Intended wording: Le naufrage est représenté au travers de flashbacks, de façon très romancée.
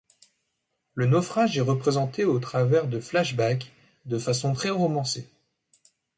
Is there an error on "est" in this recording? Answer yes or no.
no